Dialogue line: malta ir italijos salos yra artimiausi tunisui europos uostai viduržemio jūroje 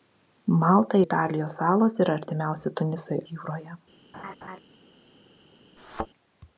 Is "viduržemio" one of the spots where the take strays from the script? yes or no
yes